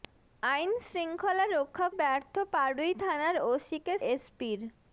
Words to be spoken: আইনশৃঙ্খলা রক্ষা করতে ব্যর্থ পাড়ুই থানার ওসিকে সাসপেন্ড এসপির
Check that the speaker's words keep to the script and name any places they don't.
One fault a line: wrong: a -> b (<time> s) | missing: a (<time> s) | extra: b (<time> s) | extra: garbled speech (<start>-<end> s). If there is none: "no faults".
missing: করতে (1.9 s)
missing: সাসপেন্ড (3.9 s)